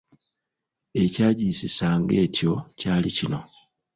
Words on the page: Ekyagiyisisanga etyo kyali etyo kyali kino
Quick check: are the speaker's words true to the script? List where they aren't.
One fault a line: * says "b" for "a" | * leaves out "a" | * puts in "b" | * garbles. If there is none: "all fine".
* leaves out "etyo kyali"